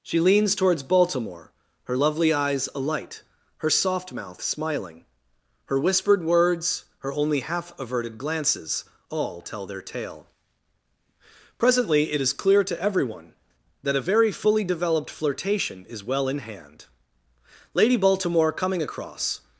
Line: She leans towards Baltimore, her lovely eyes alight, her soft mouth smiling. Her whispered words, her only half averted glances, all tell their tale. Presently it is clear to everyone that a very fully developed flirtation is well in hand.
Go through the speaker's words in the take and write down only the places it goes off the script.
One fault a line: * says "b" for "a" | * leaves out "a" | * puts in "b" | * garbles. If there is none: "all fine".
* puts in "Lady Baltimore coming across"